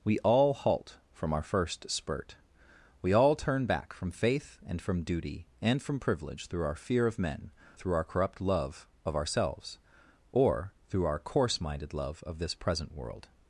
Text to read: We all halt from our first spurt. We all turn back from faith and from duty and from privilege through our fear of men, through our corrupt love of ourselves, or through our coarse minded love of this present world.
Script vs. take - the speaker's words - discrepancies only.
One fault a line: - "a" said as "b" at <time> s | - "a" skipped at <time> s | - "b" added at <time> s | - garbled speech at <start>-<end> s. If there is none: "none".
none